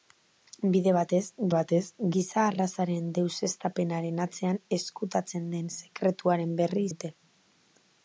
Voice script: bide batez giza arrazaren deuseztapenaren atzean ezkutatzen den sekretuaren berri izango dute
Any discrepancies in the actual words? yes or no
yes